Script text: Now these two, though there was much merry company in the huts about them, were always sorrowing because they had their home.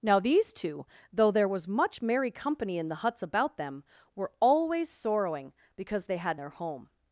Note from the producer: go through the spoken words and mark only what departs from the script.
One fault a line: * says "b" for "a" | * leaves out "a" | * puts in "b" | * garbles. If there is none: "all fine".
all fine